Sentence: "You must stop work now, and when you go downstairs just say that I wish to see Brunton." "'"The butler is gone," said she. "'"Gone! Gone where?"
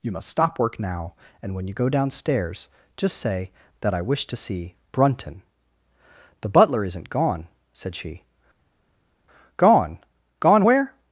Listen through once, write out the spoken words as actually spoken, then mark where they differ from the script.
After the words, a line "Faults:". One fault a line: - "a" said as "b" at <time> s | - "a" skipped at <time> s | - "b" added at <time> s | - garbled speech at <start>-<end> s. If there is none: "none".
"You must stop work now, and when you go downstairs just say that I wish to see Brunton." "'"The butler isn't gone," said she. "'"Gone! Gone where?"
Faults:
- "is" said as "isn't" at 6.8 s